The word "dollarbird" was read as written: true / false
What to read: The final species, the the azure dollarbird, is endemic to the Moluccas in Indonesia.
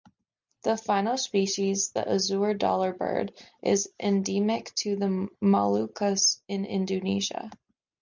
true